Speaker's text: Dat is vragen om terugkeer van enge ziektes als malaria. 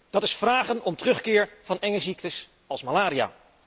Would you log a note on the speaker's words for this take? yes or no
no